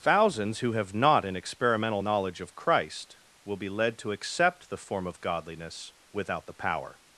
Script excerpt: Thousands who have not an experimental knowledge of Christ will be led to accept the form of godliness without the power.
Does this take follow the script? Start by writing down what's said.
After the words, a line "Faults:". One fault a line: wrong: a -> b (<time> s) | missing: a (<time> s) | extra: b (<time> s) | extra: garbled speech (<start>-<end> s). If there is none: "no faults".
Thousands who have not an experimental knowledge of Christ will be led to accept the form of godliness without the power.
Faults:
no faults